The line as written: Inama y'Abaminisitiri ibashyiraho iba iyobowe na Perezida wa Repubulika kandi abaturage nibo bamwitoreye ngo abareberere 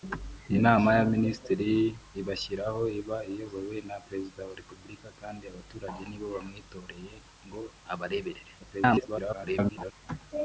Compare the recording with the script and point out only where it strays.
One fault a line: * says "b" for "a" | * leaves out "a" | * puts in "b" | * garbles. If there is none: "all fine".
* garbles